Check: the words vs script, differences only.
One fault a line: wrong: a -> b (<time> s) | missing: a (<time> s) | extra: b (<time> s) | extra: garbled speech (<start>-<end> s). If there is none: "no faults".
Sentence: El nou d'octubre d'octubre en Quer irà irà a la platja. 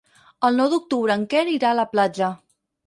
missing: d'octubre (1.2 s)
missing: irà (1.7 s)